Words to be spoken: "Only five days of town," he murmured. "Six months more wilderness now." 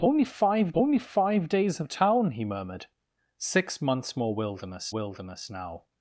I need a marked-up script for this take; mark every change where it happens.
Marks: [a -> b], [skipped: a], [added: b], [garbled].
"Only five [added: only five] days of town," he murmured. "Six months more wilderness [added: wilderness] now."